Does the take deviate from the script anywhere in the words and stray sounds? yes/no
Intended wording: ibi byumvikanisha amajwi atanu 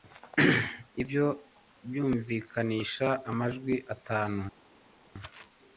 yes